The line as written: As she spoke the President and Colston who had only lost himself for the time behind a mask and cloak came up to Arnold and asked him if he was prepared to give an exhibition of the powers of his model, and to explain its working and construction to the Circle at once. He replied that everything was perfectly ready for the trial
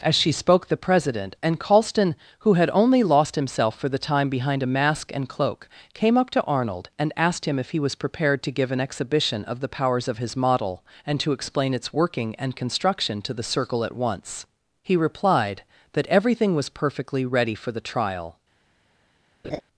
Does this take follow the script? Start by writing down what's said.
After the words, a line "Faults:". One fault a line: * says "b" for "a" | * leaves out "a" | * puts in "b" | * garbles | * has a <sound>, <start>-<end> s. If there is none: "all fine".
As she spoke the President and Colston who had only lost himself for the time behind a mask and cloak came up to Arnold and asked him if he was prepared to give an exhibition of the powers of his model, and to explain its working and construction to the Circle at once. He replied that everything was perfectly ready for the trial
Faults:
* has a laugh, 19.4-19.6 s